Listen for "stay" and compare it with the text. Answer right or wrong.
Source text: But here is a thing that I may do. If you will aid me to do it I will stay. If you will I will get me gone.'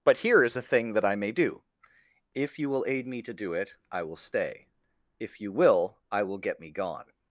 right